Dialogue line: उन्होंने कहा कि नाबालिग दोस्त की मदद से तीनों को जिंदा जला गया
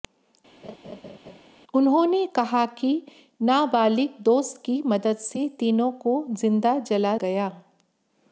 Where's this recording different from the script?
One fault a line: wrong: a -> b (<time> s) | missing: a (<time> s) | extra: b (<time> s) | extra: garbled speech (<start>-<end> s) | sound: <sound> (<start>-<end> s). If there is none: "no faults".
sound: laugh (0.6-1.4 s)